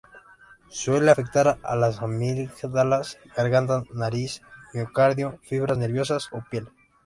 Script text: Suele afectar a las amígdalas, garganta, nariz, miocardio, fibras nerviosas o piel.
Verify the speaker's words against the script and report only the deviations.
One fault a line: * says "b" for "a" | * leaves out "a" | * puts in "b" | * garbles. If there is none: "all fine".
all fine